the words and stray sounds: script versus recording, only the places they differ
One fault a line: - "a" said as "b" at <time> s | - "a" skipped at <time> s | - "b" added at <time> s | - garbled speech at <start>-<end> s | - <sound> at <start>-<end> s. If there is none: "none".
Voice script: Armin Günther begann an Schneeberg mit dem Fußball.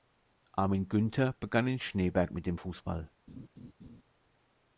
- "an" said as "in" at 1.7 s
- laugh at 3.3-4.0 s